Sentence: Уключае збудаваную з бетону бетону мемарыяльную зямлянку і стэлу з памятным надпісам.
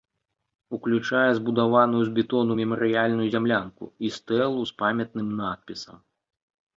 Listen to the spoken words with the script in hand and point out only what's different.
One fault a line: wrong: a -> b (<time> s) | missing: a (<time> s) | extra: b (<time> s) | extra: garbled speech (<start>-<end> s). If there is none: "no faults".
missing: бетону (2.5 s)